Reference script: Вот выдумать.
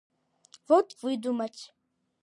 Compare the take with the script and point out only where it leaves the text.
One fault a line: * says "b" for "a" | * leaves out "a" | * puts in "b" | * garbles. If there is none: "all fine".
all fine